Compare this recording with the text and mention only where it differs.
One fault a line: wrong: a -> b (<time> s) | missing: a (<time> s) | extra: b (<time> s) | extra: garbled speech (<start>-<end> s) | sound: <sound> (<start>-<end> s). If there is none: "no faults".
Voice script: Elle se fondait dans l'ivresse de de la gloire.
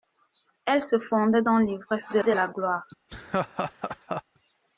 sound: laugh (3.1-4.2 s)